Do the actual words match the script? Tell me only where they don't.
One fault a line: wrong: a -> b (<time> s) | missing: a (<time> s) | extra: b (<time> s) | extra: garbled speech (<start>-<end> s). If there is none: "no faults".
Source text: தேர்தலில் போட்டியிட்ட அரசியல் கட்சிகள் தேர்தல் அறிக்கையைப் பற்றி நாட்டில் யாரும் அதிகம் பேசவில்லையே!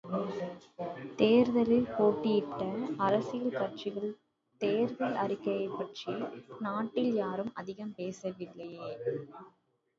no faults